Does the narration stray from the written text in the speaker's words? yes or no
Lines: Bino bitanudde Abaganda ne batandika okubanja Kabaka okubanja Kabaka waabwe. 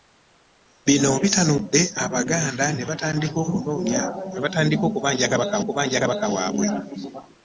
no